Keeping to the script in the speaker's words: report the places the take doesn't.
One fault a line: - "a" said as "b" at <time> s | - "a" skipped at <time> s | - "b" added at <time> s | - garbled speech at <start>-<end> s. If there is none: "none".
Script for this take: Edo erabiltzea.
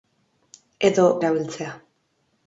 none